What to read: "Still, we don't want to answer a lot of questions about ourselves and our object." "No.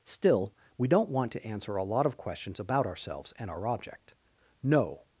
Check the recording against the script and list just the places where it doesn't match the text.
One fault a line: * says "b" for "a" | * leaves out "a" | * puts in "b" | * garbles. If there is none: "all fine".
all fine